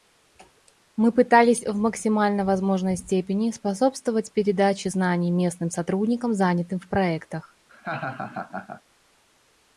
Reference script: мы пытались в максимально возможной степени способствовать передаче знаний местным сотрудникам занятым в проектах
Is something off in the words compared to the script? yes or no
no